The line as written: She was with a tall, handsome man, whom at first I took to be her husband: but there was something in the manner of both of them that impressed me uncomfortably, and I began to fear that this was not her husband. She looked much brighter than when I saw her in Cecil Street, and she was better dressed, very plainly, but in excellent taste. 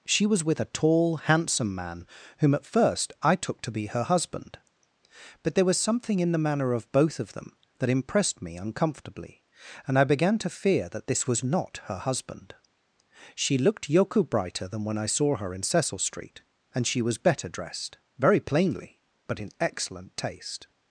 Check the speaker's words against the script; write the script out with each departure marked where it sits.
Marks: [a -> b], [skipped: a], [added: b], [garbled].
She was with a tall, handsome man, whom at first I took to be her husband: but there was something in the manner of both of them that impressed me uncomfortably, and I began to fear that this was not her husband. She looked [much -> yoku] brighter than when I saw her in Cecil Street, and she was better dressed, very plainly, but in excellent taste.